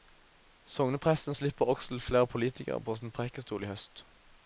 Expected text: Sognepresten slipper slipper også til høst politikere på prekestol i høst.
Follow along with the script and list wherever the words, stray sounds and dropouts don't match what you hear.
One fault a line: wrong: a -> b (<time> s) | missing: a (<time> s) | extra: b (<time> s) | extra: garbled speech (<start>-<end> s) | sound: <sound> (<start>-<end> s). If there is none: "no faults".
missing: slipper (1.6 s)
wrong: høst -> flere (2.0 s)
extra: sin (2.9 s)